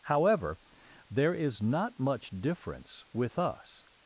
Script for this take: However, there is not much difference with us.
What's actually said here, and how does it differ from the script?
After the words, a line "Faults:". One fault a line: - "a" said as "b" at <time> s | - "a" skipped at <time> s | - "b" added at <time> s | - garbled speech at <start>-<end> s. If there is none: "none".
However, there is not much difference with us.
Faults:
none